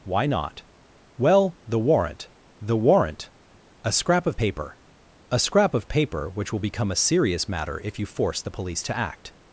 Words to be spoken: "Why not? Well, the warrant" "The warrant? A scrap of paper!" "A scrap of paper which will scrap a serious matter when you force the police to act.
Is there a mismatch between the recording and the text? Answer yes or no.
yes